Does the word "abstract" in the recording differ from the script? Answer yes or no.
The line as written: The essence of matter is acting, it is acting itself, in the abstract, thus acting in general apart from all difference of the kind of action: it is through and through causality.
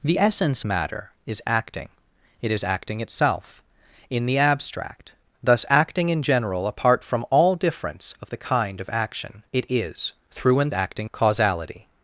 no